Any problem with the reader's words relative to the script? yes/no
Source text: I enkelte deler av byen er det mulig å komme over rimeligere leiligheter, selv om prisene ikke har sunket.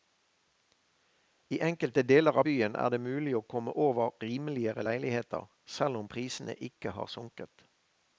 no